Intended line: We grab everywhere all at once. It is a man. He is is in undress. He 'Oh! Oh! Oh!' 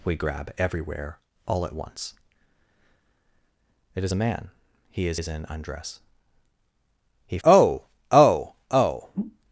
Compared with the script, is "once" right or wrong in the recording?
right